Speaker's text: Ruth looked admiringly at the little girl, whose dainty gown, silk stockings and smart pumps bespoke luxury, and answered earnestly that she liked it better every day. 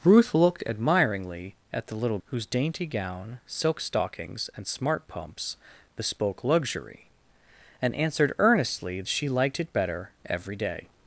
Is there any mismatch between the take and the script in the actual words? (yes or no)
yes